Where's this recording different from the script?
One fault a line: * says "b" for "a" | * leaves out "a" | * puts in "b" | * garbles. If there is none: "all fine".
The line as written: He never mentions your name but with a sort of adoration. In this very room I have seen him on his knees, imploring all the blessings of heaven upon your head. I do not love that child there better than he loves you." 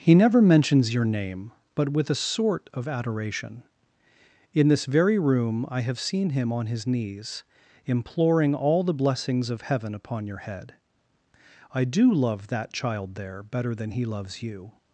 * leaves out "not"